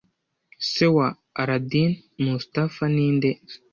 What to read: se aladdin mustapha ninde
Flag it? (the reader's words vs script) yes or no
yes